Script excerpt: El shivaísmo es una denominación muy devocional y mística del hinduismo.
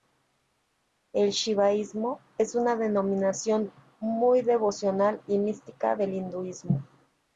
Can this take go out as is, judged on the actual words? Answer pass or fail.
pass